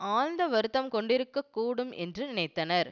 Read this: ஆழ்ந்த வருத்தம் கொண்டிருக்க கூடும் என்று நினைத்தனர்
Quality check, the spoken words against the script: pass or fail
pass